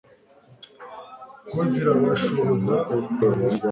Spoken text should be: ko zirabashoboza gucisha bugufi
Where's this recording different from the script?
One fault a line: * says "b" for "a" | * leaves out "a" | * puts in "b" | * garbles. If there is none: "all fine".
* leaves out "gucisha"